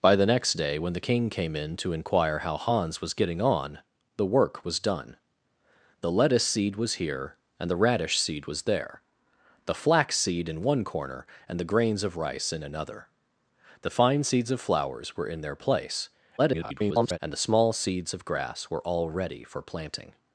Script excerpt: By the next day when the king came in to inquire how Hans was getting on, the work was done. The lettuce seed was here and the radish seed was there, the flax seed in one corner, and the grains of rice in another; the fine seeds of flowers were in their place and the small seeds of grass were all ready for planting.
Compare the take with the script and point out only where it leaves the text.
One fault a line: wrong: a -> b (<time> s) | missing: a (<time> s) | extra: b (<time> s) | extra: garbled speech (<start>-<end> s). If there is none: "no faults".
extra: garbled speech (16.4-17.2 s)